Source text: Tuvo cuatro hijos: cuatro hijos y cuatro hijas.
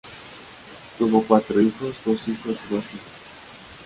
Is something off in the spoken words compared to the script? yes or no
yes